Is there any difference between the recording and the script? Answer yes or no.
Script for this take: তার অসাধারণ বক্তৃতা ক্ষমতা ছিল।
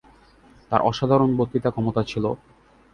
no